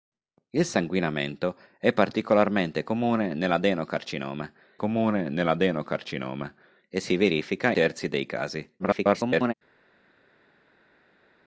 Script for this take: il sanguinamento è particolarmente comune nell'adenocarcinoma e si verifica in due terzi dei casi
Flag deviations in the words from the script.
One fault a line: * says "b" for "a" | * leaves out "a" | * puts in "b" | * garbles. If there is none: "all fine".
* puts in "comune nell'adenocarcinoma"
* leaves out "in due"
* garbles